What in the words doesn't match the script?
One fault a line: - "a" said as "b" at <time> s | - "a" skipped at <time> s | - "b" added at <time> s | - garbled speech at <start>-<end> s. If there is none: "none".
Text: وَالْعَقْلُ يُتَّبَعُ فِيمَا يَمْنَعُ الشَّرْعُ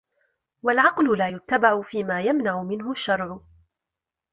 - "لَا" added at 1.2 s
- "مِنْهُ" added at 2.6 s